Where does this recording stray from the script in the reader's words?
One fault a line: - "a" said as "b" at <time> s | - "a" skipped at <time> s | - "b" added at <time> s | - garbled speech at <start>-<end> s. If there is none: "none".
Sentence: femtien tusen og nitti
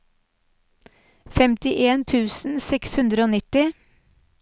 - "seks hundre" added at 2.7 s